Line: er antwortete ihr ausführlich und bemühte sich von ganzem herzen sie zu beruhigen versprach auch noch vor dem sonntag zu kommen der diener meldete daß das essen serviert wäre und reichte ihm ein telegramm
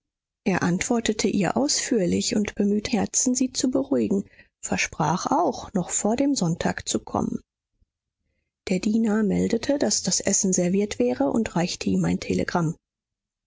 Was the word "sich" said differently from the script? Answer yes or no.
yes